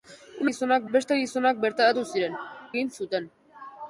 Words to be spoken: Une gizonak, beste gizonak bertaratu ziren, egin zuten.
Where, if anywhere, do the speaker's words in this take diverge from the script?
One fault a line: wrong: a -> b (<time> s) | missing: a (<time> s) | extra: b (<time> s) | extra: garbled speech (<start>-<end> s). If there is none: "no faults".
no faults